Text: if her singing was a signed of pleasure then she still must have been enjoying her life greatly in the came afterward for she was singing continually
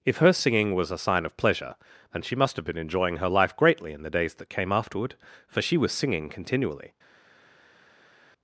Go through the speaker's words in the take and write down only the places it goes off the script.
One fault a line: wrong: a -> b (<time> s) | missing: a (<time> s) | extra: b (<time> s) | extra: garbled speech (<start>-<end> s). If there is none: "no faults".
wrong: signed -> sign (1.0 s)
missing: still (2.4 s)
extra: days that (4.1 s)